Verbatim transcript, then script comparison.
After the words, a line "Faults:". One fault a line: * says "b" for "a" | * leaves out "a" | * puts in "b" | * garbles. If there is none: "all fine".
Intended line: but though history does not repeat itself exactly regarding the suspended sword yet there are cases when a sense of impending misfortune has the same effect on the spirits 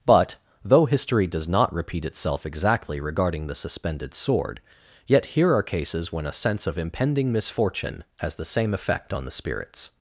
but though history does not repeat itself exactly regarding the suspended sword yet here are cases when a sense of impending misfortune has the same effect on the spirits
Faults:
* says "here" for "there"